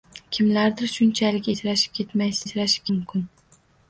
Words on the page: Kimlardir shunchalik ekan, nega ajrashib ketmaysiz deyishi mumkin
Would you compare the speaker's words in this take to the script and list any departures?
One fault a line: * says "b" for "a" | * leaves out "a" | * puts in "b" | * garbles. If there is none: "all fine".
* leaves out "ekan nega"
* says "ajrashib" for "deyishi"